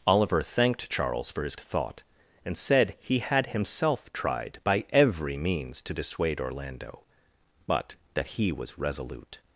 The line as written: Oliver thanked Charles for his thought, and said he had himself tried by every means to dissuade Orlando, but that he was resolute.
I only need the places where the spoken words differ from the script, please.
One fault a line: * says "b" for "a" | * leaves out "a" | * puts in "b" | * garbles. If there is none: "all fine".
all fine